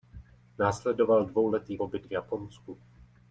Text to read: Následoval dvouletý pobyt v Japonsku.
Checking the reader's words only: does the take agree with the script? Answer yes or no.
yes